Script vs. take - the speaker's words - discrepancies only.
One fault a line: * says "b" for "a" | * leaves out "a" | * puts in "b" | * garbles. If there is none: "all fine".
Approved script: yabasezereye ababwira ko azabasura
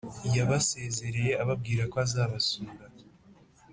all fine